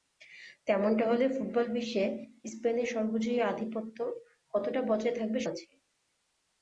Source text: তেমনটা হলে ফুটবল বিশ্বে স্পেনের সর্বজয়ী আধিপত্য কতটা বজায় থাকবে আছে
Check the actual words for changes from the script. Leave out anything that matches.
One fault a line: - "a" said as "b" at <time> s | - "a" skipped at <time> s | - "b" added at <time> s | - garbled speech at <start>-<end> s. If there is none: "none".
none